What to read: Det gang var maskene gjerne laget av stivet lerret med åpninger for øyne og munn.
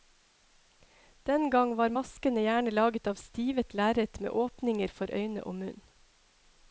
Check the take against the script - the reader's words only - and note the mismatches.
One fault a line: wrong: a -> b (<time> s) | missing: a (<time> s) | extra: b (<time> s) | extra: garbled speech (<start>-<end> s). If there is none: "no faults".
wrong: Det -> Den (1.3 s)